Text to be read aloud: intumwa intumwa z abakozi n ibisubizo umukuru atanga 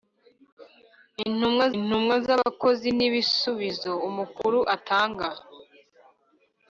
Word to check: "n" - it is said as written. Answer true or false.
true